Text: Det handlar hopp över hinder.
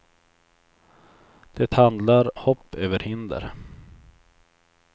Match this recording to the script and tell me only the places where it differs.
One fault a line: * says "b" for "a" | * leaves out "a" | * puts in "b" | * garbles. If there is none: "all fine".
all fine